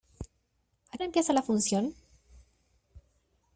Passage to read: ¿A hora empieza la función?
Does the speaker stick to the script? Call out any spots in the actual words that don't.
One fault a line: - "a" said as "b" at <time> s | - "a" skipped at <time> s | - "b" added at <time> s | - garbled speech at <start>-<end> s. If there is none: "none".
none